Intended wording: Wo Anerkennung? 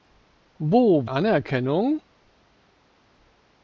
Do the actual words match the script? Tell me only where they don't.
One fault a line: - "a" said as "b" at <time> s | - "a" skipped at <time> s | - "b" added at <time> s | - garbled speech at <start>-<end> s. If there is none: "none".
none